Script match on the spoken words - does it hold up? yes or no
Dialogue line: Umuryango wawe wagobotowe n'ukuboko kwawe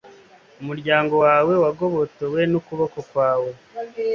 yes